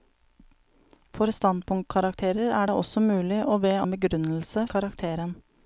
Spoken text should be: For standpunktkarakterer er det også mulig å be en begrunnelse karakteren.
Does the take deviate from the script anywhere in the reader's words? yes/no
no